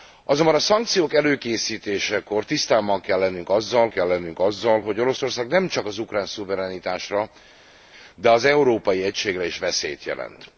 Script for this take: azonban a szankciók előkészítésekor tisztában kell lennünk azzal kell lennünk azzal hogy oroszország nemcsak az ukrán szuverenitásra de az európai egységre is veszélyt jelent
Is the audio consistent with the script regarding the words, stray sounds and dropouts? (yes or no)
yes